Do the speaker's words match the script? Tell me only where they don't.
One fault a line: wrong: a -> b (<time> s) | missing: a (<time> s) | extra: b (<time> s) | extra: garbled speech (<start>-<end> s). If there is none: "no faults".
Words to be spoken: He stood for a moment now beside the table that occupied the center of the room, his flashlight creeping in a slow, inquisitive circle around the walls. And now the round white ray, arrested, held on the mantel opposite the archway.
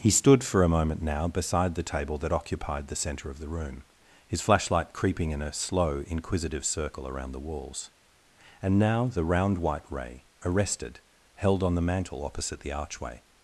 no faults